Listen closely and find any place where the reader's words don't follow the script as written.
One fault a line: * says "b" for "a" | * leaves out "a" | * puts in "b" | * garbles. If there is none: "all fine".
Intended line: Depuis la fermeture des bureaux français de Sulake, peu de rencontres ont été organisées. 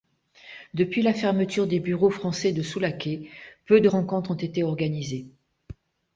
all fine